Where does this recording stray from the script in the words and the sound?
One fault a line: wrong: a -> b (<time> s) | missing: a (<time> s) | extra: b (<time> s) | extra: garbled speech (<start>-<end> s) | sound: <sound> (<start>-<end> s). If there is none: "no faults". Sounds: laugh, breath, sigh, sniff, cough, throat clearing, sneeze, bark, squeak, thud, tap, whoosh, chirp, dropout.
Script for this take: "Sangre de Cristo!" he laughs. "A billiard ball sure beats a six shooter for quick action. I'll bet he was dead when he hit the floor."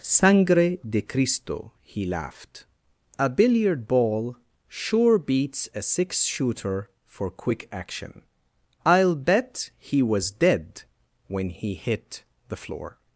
wrong: laughs -> laughed (2.1 s)